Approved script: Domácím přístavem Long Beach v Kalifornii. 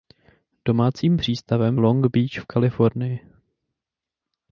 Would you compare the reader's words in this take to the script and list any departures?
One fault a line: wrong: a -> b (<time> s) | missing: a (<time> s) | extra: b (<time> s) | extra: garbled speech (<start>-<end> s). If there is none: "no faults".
no faults